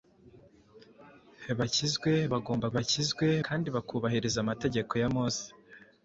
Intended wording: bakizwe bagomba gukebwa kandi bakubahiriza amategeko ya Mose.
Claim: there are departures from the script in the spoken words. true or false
true